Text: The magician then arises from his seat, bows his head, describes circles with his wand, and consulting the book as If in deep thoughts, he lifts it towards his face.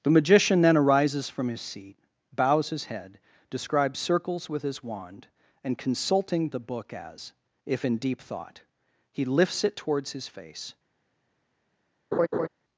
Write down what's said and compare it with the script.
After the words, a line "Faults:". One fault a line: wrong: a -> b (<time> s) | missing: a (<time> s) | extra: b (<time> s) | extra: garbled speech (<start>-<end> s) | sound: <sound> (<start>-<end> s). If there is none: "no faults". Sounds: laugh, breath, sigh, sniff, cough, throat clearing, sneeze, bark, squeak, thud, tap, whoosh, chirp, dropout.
The magician then arises from his seat, bows his head, describes circles with his wand, and consulting the book as If in deep thought, he lifts it towards his face.
Faults:
wrong: thoughts -> thought (8.2 s)
sound: laugh (12.1-12.5 s)